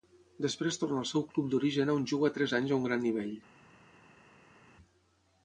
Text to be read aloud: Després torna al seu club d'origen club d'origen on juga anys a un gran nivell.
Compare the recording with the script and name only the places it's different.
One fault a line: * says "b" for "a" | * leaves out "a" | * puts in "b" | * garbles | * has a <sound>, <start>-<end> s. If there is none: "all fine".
* leaves out "club d'origen"
* puts in "tres"